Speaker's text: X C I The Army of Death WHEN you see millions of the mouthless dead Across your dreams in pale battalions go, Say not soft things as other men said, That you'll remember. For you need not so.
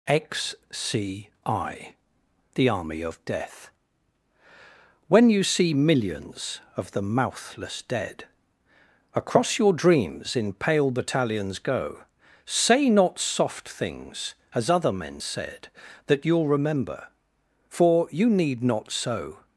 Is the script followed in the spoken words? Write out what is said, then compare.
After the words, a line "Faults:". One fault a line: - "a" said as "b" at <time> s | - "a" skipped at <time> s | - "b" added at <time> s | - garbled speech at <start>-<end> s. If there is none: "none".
X C I The Army of Death WHEN you see millions of the mouthless dead Across your dreams in pale battalions go, Say not soft things as other men said, That you'll remember. For you need not so.
Faults:
none